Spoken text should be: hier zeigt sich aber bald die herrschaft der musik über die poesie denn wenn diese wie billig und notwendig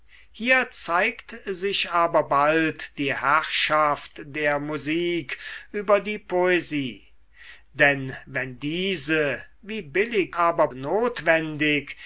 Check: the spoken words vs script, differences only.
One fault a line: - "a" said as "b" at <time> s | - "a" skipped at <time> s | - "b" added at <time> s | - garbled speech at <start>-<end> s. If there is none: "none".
- "und" said as "aber" at 10.4 s